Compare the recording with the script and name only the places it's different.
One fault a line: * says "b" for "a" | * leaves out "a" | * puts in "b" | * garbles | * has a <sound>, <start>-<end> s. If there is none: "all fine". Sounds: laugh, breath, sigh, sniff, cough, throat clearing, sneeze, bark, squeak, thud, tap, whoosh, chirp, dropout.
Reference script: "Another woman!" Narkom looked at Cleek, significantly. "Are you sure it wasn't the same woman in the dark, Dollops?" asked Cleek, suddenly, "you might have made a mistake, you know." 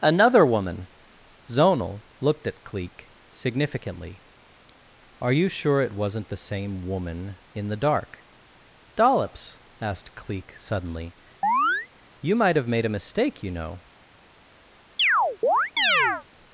* says "Zonal" for "Narkom"
* has a chirp, 11.4-11.9 s
* has a chirp, 15.0-16.2 s